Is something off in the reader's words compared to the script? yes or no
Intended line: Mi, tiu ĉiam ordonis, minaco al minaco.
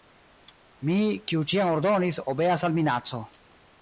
yes